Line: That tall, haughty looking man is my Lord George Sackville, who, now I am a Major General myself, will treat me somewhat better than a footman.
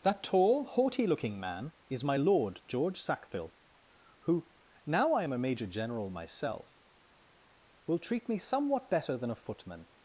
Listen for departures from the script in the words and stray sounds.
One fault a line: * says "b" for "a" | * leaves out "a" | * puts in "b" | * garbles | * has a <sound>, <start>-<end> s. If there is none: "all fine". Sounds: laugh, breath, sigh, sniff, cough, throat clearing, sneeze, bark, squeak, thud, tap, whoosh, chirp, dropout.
all fine